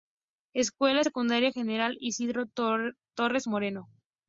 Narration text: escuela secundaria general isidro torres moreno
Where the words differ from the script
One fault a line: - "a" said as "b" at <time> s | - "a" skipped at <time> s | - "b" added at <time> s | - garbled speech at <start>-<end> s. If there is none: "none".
none